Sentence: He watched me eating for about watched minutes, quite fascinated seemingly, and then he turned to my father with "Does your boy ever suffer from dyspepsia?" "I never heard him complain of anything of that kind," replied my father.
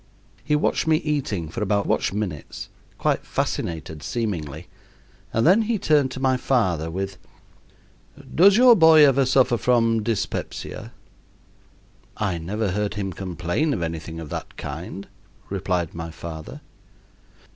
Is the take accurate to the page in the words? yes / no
yes